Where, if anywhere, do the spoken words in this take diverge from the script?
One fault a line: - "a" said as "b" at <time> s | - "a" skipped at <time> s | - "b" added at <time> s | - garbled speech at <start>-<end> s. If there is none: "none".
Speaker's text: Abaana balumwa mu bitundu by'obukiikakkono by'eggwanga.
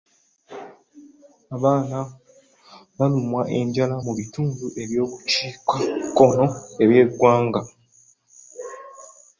- "enjala" added at 3.6 s